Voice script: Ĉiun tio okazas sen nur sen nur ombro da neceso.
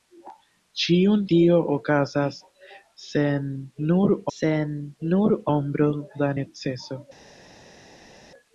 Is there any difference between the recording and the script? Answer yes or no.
no